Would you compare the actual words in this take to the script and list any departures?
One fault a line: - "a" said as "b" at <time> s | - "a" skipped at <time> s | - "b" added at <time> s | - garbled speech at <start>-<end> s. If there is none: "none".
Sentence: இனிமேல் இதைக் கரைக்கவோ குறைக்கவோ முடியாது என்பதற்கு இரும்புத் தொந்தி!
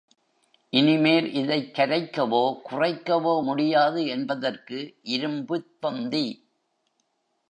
none